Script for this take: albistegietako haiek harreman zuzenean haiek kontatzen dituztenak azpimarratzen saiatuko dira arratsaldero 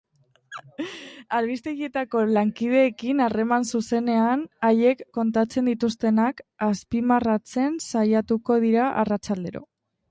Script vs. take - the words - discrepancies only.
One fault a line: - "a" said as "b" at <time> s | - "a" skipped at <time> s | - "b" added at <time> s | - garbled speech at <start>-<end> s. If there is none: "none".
- "haiek" said as "lankideekin" at 2.4 s